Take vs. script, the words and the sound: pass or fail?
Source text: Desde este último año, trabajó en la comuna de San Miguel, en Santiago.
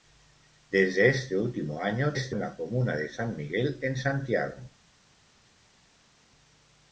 fail